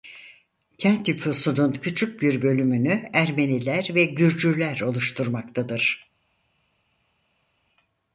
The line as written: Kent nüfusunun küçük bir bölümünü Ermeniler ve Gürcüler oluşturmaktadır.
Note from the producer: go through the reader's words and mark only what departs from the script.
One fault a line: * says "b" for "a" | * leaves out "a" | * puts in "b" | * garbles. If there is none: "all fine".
all fine